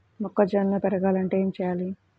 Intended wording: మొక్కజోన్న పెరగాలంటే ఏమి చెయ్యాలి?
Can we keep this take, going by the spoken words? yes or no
yes